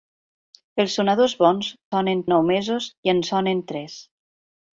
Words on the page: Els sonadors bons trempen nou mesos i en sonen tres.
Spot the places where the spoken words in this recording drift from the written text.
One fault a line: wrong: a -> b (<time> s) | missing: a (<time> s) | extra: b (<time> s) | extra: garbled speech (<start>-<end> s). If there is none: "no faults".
wrong: trempen -> sonen (1.9 s)